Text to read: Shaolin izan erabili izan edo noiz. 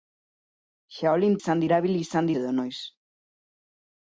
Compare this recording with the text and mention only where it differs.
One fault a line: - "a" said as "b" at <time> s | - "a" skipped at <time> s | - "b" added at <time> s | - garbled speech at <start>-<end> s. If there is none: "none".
none